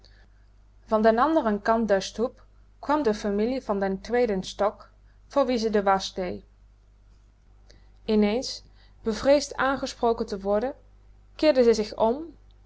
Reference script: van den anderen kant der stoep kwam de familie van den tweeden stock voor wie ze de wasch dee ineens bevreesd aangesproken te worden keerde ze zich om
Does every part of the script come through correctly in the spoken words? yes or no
yes